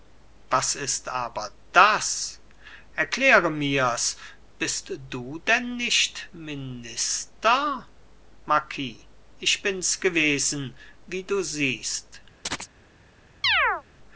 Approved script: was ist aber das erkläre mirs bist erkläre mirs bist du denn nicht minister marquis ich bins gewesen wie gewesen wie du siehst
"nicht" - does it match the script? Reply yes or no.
yes